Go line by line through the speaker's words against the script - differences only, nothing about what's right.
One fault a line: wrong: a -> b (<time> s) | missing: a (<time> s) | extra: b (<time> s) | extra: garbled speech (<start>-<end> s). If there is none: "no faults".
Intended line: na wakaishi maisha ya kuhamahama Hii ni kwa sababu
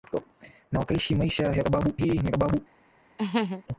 wrong: kuhamahama -> sababu (1.6 s)
missing: kwa (2.3 s)